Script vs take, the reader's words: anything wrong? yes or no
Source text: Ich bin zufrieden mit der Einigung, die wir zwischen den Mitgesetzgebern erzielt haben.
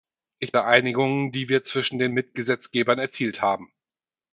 yes